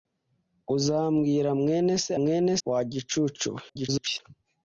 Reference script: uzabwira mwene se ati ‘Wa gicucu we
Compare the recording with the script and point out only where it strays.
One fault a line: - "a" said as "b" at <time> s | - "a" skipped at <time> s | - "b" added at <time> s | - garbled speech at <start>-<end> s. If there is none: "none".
- "ati" said as "mwene" at 2.2 s
- garbled speech at 3.7-4.2 s